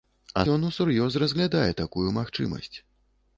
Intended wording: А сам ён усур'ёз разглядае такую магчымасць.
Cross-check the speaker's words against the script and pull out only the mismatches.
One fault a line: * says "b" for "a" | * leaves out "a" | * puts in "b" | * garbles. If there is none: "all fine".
* leaves out "сам"